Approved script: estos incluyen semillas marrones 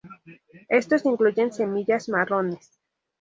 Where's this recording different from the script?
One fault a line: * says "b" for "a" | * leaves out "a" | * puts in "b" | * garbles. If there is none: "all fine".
all fine